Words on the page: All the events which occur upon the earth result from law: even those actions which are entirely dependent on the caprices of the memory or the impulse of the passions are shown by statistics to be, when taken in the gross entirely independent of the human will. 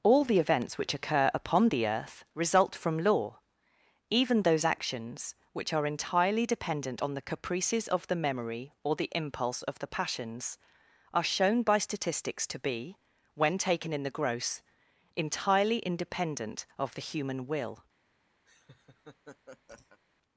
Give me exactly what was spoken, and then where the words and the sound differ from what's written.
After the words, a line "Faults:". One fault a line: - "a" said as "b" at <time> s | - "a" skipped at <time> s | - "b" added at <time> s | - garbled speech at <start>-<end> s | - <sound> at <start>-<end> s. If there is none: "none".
All the events which occur upon the earth result from law: even those actions which are entirely dependent on the caprices of the memory or the impulse of the passions are shown by statistics to be, when taken in the gross entirely independent of the human will.
Faults:
- laugh at 18.4-20.0 s